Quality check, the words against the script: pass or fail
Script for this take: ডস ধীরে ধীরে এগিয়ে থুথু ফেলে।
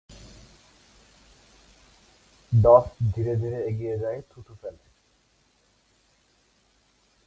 fail